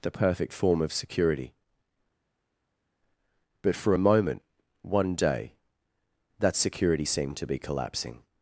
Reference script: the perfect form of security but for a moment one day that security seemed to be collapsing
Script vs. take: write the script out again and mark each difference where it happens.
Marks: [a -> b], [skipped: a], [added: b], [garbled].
the perfect form of security but for a moment one day that security seemed to be collapsing